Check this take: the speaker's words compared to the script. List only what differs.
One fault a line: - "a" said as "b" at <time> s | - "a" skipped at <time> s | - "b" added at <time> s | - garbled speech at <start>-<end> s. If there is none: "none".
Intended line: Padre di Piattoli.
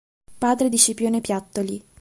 - "Scipione" added at 0.8 s